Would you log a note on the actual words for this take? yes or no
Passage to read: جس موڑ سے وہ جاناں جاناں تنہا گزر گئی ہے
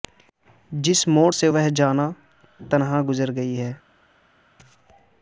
yes